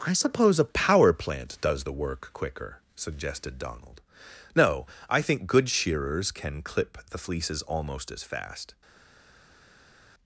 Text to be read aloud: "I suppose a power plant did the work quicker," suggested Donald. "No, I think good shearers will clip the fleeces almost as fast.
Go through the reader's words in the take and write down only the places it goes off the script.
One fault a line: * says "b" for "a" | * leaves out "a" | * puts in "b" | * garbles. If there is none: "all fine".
* says "does" for "did"
* says "can" for "will"